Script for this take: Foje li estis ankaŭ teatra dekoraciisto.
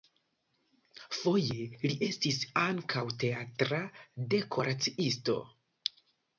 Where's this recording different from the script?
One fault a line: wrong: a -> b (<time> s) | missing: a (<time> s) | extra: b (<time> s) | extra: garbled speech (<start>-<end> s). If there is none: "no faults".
no faults